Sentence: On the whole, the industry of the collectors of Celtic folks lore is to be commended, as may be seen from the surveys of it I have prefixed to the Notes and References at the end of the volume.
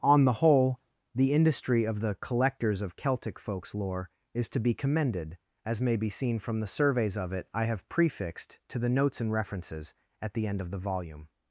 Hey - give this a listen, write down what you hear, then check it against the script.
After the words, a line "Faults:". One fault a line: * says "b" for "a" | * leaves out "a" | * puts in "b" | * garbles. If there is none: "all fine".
On the whole, the industry of the collectors of Celtic folks lore is to be commended, as may be seen from the surveys of it I have prefixed to the Notes and References at the end of the volume.
Faults:
all fine